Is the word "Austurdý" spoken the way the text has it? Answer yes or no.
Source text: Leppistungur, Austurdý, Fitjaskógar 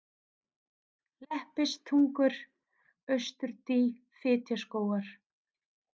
yes